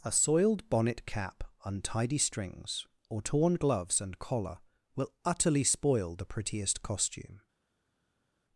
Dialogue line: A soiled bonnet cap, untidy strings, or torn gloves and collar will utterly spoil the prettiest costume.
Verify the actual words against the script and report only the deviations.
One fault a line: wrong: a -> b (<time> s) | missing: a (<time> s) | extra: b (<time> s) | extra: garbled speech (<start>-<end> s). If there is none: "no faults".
no faults